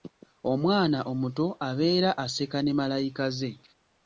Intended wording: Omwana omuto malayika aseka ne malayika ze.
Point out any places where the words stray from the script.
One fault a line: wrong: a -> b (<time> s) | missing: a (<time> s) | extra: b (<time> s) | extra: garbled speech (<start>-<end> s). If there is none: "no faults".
wrong: malayika -> abeera (1.7 s)